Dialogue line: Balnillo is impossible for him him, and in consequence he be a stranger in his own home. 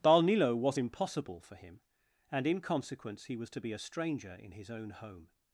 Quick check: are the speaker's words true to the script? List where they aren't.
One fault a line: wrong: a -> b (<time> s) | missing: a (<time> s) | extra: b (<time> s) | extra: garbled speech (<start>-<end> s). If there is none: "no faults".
wrong: is -> was (0.6 s)
missing: him (1.8 s)
extra: was to (3.4 s)